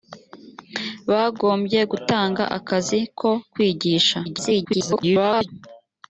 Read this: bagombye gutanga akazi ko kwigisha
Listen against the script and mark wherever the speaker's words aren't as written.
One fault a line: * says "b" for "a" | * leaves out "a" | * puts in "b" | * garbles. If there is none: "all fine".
* garbles